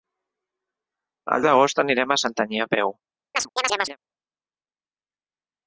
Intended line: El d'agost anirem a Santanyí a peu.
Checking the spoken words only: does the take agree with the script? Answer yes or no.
yes